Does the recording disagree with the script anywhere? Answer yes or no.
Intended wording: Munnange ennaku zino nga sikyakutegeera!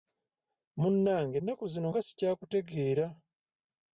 no